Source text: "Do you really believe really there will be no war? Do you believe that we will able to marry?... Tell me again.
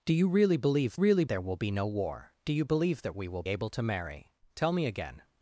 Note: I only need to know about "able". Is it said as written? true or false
true